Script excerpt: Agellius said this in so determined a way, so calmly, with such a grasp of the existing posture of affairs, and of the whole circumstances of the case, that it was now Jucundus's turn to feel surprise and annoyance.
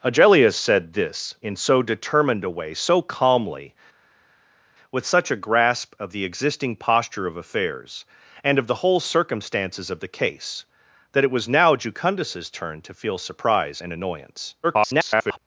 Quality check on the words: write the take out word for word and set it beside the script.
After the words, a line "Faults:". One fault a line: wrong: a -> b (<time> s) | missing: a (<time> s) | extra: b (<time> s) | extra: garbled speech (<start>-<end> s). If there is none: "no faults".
Agellius said this in so determined a way, so calmly, with such a grasp of the existing posture of affairs, and of the whole circumstances of the case, that it was now Jucundus's turn to feel surprise and annoyance. [garbled]
Faults:
extra: garbled speech (14.6-15.4 s)